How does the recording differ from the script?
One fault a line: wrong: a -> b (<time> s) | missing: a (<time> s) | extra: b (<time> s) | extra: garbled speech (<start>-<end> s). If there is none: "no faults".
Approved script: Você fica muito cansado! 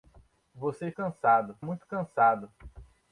wrong: fica -> cansado (0.9 s)